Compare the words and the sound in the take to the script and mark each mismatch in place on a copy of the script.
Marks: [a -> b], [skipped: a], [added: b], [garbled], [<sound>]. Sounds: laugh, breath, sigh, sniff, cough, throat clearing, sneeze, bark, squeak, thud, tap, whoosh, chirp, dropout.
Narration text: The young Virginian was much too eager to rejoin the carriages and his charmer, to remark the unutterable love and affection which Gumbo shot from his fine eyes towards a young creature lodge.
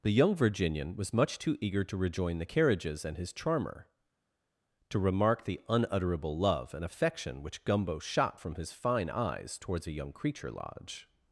The young Virginian was much too eager to rejoin the carriages and his charmer, to remark the unutterable love and affection which Gumbo shot from his fine eyes towards a young creature lodge.